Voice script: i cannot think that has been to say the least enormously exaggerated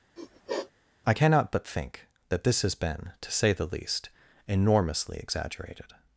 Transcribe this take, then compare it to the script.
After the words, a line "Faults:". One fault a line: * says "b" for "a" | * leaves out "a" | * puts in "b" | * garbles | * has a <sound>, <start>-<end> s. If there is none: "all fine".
i cannot but think that this has been to say the least enormously exaggerated
Faults:
* has a sniff, 0.2-0.7 s
* puts in "but"
* puts in "this"